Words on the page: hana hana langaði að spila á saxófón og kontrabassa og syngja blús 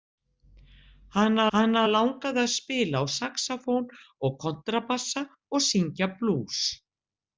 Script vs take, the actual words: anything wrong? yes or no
no